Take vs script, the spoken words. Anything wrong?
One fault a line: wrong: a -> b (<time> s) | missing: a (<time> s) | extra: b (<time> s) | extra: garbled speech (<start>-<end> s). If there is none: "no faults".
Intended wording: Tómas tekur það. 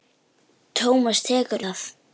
no faults